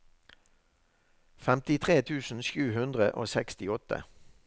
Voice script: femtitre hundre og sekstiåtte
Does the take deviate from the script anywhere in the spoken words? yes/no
yes